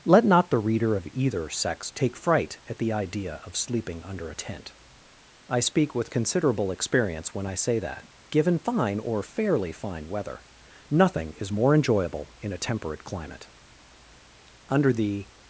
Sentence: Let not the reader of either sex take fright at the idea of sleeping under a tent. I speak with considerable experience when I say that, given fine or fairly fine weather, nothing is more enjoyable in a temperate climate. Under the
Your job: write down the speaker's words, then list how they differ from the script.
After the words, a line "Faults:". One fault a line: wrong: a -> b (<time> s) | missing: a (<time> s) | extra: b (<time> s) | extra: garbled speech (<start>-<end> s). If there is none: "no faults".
Let not the reader of either sex take fright at the idea of sleeping under a tent. I speak with considerable experience when I say that, given fine or fairly fine weather, nothing is more enjoyable in a temperate climate. Under the
Faults:
no faults